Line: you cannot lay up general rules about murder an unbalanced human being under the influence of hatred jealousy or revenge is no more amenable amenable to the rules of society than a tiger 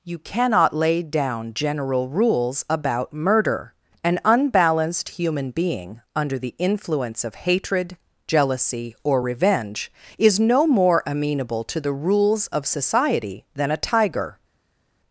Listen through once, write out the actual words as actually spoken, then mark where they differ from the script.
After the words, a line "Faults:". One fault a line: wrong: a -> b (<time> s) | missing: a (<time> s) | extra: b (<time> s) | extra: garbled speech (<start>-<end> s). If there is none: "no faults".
you cannot lay down general rules about murder an unbalanced human being under the influence of hatred jealousy or revenge is no more amenable to the rules of society than a tiger
Faults:
wrong: up -> down (1.0 s)
missing: amenable (11.6 s)